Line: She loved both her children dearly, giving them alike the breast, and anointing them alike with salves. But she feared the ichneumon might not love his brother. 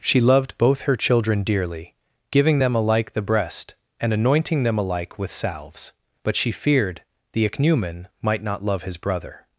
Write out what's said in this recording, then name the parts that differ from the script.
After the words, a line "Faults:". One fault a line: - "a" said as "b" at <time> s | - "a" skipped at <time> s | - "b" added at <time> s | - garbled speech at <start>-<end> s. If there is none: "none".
She loved both her children dearly, giving them alike the breast, and anointing them alike with salves. But she feared the ichneumon might not love his brother.
Faults:
none